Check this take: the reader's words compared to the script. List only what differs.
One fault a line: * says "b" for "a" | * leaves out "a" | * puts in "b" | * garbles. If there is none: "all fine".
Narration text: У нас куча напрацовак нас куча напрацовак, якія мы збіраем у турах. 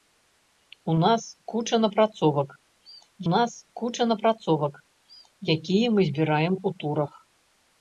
all fine